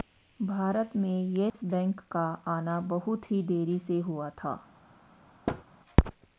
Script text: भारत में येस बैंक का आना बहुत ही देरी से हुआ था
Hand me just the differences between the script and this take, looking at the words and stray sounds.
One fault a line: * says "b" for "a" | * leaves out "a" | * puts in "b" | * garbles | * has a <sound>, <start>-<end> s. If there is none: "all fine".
* has a dropout, 1.5-1.5 s
* has a thud, 5.5-5.6 s